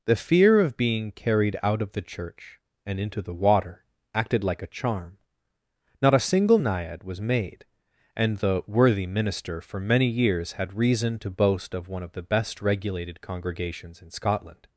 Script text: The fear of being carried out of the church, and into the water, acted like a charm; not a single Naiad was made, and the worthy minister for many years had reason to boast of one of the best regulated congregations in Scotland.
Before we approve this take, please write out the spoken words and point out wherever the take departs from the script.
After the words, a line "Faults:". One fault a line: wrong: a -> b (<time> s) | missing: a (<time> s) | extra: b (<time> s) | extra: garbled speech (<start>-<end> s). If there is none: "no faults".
The fear of being carried out of the church, and into the water, acted like a charm; not a single Naiad was made, and the worthy minister for many years had reason to boast of one of the best regulated congregations in Scotland.
Faults:
no faults